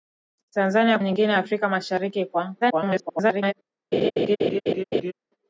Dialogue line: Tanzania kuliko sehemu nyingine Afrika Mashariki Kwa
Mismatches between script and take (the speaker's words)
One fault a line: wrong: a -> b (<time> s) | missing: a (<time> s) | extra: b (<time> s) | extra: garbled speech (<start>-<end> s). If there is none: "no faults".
missing: kuliko sehemu (1.0 s)
extra: garbled speech (2.6-3.5 s)